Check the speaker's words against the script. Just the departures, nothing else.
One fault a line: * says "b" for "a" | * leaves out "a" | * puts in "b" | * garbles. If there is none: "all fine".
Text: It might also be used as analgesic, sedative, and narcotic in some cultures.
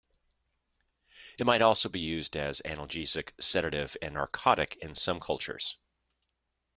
all fine